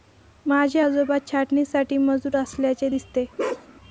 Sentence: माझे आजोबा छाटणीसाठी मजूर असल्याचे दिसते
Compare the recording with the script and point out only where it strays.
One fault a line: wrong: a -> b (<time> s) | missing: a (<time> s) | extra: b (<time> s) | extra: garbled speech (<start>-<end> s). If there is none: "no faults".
no faults